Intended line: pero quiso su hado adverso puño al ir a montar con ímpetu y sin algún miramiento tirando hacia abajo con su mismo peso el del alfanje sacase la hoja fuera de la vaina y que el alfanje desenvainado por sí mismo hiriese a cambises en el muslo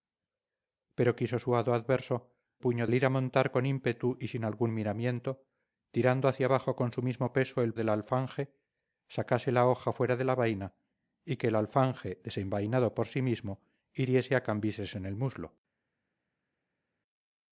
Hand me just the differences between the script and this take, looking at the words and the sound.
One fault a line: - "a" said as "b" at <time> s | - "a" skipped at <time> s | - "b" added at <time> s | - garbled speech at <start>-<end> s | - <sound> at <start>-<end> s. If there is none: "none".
none